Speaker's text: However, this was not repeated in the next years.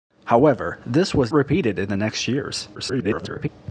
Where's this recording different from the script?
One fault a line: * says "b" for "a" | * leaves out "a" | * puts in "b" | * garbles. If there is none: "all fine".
* leaves out "not"
* garbles